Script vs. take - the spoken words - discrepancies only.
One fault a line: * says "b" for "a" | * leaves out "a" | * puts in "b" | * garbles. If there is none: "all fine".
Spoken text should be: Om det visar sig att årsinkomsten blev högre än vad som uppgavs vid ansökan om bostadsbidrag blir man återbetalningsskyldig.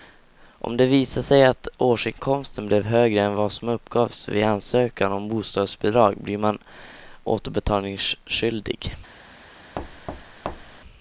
all fine